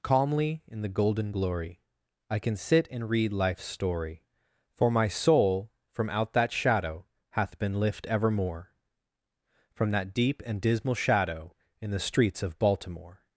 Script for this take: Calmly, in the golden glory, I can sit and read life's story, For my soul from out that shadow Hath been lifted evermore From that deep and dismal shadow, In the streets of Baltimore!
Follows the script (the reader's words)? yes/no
no